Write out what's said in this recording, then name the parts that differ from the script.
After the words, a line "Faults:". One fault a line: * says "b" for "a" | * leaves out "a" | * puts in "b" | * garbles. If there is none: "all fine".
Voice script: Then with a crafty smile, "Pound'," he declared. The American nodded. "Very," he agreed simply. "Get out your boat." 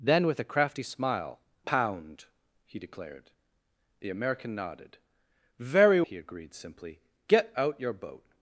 Then with a crafty smile, "Pound'," he declared. The American nodded. "Very," he agreed simply. "Get out your boat."
Faults:
all fine